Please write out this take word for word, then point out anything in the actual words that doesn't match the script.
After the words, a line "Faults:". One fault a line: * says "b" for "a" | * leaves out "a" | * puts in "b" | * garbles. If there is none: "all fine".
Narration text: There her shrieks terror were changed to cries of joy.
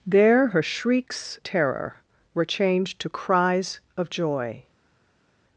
There her shrieks terror were changed to cries of joy.
Faults:
all fine